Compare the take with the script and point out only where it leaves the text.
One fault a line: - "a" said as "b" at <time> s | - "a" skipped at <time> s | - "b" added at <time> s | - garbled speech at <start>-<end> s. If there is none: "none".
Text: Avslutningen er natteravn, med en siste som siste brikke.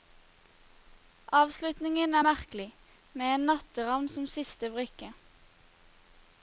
- "natteravn" said as "merkelig" at 2.3 s
- "siste" said as "natteravn" at 3.5 s